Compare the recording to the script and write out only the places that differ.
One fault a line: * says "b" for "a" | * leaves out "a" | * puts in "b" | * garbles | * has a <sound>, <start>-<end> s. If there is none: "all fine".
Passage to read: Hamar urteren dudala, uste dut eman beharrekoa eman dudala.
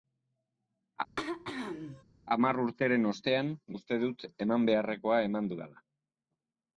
* has a throat clearing, 1.2-2.0 s
* says "ostean" for "dudala"